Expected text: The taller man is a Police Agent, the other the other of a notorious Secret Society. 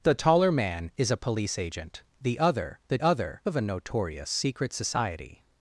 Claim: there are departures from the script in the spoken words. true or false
false